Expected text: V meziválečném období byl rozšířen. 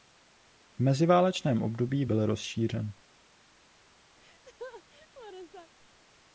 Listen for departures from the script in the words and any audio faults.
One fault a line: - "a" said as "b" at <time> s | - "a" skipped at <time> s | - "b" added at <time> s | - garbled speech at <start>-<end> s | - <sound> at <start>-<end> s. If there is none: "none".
- laugh at 4.2-5.7 s